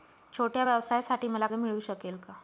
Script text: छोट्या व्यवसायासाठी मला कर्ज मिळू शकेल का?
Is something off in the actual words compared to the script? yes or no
yes